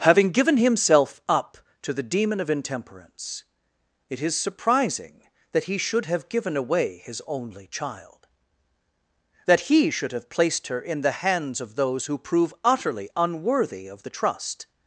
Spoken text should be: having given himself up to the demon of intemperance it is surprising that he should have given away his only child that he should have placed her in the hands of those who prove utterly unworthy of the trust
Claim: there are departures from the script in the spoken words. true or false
false